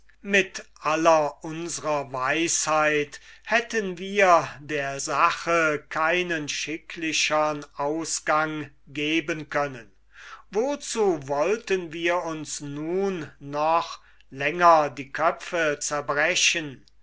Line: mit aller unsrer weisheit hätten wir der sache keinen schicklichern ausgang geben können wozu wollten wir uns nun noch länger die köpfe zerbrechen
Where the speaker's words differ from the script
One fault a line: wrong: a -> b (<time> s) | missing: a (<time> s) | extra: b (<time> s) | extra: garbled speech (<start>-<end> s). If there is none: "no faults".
no faults